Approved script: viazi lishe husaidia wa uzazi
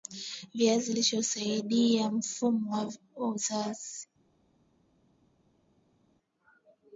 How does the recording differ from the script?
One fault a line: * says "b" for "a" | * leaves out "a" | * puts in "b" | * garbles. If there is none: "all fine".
* puts in "mfumo"